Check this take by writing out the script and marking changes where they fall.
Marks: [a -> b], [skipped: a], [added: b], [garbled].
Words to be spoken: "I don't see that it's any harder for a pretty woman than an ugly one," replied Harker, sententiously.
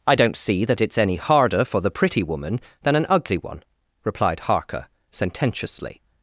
"I don't see that it's any harder for [a -> the] pretty woman than an ugly one," replied Harker, sententiously.